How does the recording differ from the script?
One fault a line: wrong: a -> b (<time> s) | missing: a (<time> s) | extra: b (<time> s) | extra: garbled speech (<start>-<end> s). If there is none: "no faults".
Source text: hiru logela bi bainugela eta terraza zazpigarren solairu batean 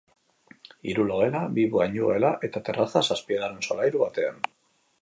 no faults